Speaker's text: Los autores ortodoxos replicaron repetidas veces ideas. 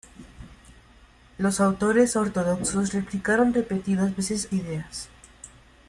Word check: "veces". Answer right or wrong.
right